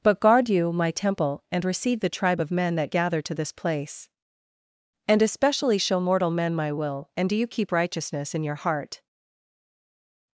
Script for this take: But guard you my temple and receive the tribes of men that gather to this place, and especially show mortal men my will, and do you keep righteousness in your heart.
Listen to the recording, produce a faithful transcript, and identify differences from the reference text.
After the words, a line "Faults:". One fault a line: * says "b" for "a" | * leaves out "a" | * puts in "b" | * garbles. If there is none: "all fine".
But guard you my temple and receive the tribe of men that gather to this place, and especially show mortal men my will, and do you keep righteousness in your heart.
Faults:
* says "tribe" for "tribes"